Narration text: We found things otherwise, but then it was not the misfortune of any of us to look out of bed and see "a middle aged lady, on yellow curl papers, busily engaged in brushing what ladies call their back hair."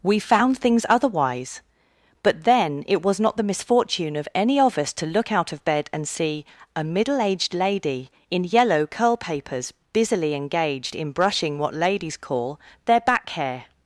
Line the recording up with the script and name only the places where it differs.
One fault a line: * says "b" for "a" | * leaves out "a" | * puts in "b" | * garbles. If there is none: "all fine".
* says "in" for "on"